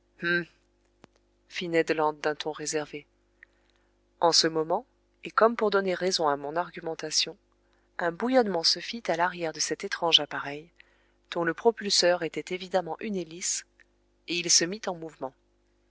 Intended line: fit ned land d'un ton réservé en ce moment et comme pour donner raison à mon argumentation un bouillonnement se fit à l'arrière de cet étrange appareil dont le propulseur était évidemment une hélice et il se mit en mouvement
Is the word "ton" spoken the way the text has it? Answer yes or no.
yes